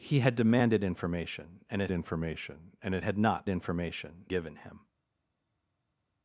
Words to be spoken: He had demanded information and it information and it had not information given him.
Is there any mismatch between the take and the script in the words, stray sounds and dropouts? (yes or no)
no